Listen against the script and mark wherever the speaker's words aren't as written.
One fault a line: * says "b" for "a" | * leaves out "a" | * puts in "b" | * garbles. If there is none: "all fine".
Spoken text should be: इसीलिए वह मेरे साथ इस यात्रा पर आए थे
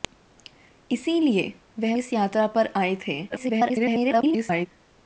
* leaves out "मेरे साथ"
* garbles